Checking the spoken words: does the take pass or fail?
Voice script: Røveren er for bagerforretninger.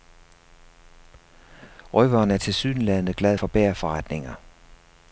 fail